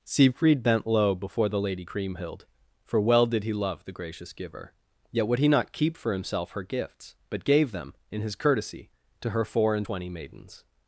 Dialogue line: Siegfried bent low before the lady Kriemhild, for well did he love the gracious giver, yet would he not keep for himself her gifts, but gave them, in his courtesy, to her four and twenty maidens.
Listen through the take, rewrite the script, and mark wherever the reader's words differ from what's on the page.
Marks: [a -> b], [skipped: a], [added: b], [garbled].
Siegfried bent low before the lady Kriemhild, for well did he love the gracious giver, yet would he not keep for himself her gifts, but gave them, in his courtesy, to her four and twenty maidens.